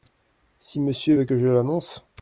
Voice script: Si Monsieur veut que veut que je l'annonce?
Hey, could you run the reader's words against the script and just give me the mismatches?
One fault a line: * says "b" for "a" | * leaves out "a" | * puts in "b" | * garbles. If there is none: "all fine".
* leaves out "veut que"